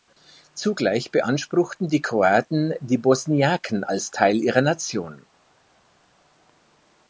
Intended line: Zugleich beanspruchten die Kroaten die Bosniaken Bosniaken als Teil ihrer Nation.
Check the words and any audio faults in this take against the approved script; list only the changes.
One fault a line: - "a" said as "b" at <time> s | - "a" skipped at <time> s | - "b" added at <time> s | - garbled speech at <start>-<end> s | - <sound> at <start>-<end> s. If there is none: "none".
- "Bosniaken" skipped at 3.8 s